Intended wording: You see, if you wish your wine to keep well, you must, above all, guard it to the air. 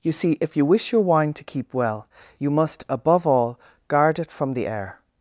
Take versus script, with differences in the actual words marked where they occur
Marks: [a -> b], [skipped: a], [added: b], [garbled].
You see, if you wish your wine to keep well, you must, above all, guard it [to -> from] the air.